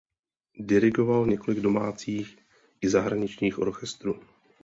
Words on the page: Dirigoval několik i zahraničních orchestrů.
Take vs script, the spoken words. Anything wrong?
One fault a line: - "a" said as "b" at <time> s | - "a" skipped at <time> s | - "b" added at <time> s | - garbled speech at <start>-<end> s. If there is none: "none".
- "domácích" added at 1.6 s